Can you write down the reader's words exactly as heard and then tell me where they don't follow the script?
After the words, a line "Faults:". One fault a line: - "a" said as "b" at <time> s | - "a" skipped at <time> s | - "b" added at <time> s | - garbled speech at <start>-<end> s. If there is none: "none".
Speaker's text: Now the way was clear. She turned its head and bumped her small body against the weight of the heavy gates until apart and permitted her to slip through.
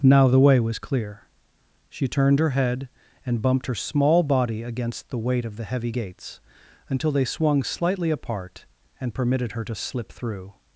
Now the way was clear. She turned her head and bumped her small body against the weight of the heavy gates until they swung slightly apart and permitted her to slip through.
Faults:
- "its" said as "her" at 2.4 s
- "they swung slightly" added at 7.1 s